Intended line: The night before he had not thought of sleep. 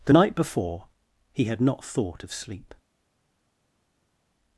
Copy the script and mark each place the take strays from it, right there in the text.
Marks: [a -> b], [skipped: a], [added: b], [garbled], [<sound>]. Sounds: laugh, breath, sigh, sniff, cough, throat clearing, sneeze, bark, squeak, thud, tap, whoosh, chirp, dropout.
The night before he had not thought of sleep.